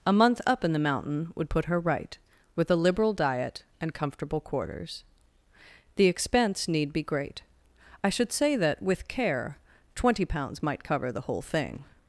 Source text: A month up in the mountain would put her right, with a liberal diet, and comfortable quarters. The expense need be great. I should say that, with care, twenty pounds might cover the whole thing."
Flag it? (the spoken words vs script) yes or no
no